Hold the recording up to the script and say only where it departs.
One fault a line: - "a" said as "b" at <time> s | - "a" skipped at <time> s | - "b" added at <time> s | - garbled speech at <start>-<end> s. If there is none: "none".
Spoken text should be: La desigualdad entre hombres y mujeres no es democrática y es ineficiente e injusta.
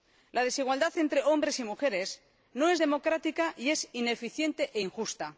none